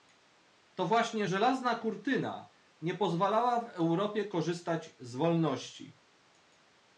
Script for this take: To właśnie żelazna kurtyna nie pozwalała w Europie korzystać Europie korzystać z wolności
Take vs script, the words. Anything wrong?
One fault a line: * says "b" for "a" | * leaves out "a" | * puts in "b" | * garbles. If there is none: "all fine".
* leaves out "Europie korzystać"